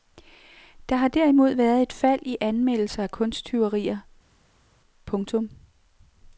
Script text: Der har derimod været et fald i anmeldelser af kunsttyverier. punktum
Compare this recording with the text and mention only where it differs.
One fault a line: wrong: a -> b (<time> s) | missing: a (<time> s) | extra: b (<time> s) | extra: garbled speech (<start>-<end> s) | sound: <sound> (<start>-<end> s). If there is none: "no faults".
no faults